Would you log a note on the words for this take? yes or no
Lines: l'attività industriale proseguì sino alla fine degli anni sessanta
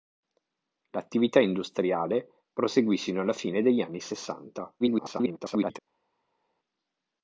yes